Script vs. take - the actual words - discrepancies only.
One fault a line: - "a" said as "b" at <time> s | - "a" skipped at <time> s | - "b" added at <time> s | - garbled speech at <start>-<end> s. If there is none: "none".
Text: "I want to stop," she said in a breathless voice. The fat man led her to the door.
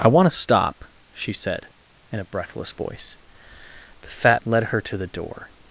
- "man" skipped at 4.4 s